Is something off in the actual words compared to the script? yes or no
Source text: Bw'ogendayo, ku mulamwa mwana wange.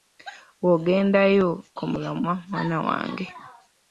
no